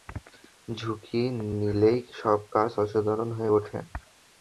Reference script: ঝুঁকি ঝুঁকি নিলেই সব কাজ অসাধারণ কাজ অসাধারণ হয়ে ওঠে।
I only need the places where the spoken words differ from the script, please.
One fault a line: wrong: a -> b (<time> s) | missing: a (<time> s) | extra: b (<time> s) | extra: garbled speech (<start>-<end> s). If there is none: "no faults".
missing: ঝুঁকি (1.2 s)
missing: কাজ অসাধারণ (3.3 s)